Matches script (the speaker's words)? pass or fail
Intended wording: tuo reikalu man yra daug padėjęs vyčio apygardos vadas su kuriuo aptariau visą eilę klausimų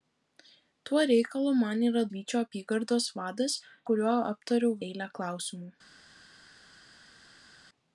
fail